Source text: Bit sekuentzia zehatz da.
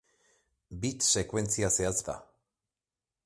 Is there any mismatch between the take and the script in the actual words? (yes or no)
no